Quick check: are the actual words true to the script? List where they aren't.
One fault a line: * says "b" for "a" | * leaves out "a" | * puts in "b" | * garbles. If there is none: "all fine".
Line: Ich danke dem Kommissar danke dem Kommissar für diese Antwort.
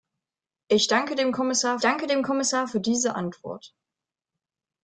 all fine